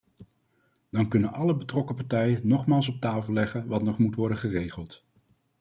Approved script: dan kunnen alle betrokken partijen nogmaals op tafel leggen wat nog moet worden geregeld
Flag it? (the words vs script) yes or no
no